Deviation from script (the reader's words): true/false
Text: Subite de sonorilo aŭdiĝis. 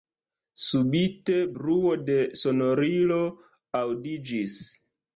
true